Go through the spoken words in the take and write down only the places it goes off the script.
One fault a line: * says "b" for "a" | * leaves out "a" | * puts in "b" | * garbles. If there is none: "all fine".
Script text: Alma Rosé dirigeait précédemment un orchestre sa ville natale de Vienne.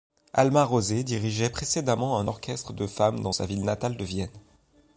* puts in "de femmes dans"